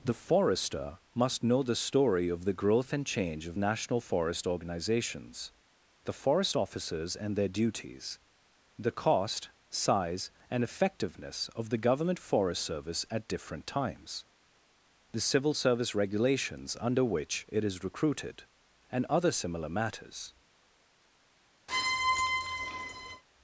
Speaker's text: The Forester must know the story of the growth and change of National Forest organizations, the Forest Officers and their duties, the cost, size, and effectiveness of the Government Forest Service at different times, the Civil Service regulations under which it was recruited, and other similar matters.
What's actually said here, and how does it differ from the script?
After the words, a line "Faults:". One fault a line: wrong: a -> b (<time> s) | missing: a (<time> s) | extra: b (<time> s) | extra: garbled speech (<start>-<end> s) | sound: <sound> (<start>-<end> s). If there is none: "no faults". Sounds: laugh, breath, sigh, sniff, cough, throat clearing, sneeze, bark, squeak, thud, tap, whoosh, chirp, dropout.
The Forester must know the story of the growth and change of National Forest organizations, the Forest Officers and their duties, the cost, size, and effectiveness of the Government Forest Service at different times, the Civil Service regulations under which it is recruited, and other similar matters.
Faults:
wrong: was -> is (17.6 s)
sound: squeak (21.7-23.2 s)